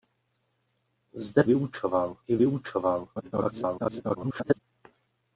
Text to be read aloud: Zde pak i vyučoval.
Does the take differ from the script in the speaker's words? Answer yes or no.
yes